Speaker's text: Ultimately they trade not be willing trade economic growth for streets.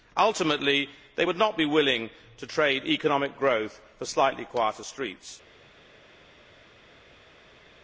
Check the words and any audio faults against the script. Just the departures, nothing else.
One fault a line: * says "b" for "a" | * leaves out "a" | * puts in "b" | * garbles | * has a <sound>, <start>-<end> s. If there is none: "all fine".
* says "would" for "trade"
* puts in "to"
* puts in "slightly quieter"